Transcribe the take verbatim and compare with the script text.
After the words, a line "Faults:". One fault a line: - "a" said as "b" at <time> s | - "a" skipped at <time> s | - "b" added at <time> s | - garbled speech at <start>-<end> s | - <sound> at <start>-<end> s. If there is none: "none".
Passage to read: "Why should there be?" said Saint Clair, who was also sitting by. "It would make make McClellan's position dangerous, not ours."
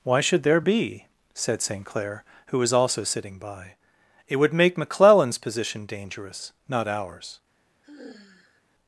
"Why should there be?" said Saint Clair, who was also sitting by. "It would make McClellan's position dangerous, not ours."
Faults:
- "make" skipped at 4.8 s
- sigh at 7.8-8.6 s